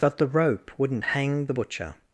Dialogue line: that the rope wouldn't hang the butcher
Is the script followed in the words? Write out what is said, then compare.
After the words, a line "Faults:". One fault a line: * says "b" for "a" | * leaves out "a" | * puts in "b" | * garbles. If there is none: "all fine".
that the rope wouldn't hang the butcher
Faults:
all fine